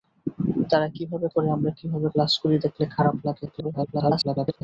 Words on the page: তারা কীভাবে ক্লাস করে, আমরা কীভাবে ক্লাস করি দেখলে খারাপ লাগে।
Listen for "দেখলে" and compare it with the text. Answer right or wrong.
right